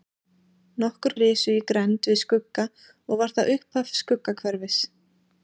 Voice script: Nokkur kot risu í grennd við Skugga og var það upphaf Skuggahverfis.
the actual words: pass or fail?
fail